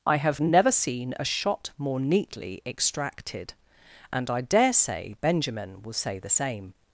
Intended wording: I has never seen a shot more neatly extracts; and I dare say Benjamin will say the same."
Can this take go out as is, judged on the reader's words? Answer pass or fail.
fail